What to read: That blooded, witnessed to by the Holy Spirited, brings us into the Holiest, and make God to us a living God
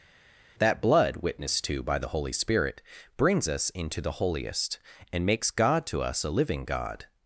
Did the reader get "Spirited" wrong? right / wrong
wrong